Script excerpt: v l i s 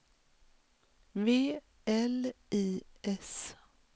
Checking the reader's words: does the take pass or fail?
pass